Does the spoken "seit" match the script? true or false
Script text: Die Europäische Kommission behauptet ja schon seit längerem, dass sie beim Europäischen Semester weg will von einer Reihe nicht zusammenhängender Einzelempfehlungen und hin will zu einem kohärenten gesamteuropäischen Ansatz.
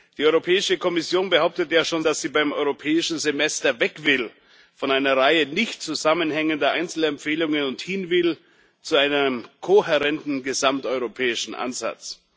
false